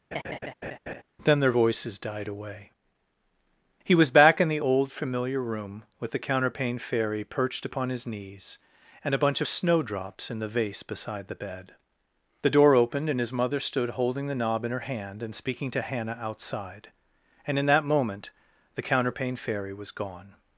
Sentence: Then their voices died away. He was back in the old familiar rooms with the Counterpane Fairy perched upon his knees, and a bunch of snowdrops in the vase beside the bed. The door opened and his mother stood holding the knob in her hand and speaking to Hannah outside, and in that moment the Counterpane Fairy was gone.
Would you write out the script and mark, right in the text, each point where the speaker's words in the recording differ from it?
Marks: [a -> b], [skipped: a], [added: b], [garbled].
Then their voices died away. He was back in the old familiar [rooms -> room] with the Counterpane Fairy perched upon his knees, and a bunch of snowdrops in the vase beside the bed. The door opened and his mother stood holding the knob in her hand and speaking to Hannah outside, and in that moment the Counterpane Fairy was gone.